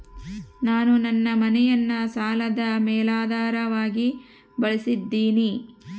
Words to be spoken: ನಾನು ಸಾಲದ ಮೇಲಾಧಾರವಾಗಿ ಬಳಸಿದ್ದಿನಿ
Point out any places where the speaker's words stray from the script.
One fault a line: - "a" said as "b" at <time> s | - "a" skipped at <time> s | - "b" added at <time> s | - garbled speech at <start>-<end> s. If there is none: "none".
- "ನನ್ನ ಮನೆಯನ್ನ" added at 1.0 s